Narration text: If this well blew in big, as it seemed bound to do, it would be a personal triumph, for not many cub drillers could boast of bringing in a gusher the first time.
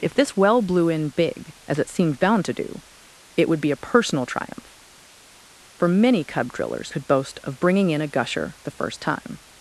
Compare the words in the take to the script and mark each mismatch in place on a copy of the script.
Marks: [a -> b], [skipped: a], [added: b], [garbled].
If this well blew in big, as it seemed bound to do, it would be a personal triumph, for [skipped: not] many cub drillers could boast of bringing in a gusher the first time.